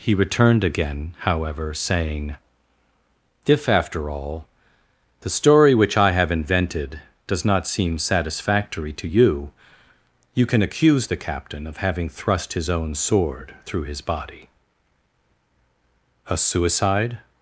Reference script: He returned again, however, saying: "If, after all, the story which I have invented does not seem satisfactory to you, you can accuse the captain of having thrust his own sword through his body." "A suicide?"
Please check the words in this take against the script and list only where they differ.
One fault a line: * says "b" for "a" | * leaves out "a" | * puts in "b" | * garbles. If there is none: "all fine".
all fine